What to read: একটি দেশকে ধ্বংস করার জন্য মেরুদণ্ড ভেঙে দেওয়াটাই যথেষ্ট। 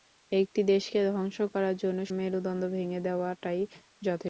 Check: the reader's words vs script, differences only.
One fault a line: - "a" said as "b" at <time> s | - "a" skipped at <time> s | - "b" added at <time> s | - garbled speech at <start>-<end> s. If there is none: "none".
none